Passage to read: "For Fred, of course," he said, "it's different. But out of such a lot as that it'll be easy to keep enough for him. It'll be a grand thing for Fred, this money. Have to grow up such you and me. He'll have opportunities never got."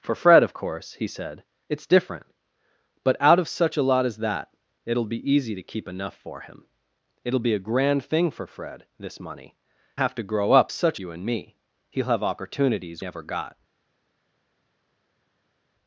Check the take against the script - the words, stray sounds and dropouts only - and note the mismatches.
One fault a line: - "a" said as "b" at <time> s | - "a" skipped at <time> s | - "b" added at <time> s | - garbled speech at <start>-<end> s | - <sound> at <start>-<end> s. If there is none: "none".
none